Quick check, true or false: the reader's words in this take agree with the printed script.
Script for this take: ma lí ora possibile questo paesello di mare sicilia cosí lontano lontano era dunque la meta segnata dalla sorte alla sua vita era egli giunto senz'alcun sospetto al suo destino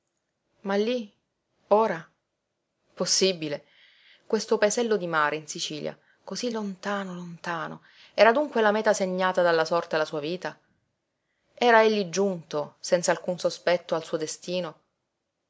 false